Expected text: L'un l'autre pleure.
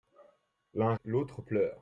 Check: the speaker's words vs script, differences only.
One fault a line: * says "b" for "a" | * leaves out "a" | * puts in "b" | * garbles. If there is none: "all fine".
all fine